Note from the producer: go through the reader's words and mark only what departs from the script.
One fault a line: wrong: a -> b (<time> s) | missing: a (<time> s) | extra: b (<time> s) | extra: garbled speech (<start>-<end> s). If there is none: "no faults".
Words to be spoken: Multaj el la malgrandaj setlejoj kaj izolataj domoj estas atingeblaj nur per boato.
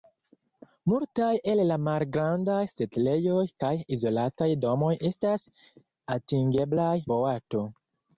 missing: nur per (7.0 s)